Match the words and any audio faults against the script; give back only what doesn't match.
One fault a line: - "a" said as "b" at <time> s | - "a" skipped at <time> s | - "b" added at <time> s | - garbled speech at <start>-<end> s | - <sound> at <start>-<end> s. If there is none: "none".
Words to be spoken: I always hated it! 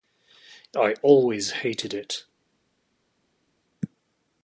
none